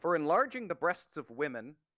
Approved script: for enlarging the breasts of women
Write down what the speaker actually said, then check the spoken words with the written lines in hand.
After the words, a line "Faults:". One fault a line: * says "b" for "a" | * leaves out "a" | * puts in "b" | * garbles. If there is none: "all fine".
for enlarging the breasts of women
Faults:
all fine